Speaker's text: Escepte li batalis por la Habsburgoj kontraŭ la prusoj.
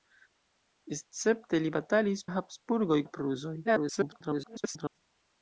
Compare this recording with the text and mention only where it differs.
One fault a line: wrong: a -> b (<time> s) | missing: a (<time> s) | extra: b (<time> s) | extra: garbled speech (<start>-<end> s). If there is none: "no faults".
missing: por (2.2 s)
missing: kontraŭ (3.0 s)
extra: garbled speech (3.6-5.0 s)